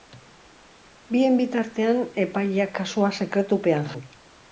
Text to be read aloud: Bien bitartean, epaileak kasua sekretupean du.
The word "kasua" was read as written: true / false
true